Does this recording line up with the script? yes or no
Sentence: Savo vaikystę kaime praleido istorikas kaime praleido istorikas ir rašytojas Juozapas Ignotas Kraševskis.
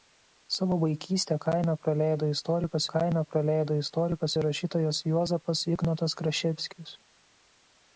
yes